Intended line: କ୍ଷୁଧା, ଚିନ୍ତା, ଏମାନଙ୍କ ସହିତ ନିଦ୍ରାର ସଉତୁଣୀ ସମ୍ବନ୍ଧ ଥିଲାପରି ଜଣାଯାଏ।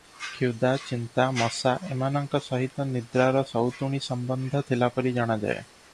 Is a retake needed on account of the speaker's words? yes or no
yes